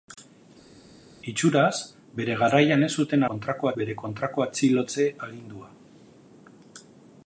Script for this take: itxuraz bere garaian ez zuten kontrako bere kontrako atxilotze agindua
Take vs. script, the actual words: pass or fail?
pass